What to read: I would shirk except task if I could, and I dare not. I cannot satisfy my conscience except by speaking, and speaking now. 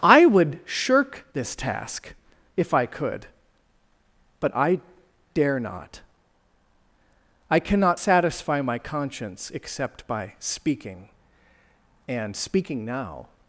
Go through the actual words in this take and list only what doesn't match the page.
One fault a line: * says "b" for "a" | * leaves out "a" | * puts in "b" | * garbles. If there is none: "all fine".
* says "this" for "except"
* says "but" for "and"